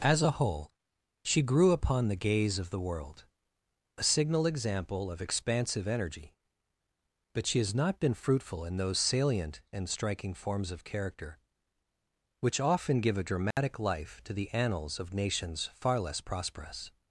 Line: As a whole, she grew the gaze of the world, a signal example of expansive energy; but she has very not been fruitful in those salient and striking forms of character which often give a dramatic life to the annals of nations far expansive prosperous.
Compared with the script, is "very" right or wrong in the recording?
wrong